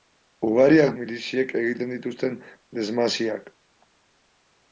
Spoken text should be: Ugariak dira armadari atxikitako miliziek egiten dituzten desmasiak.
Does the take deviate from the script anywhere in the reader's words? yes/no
yes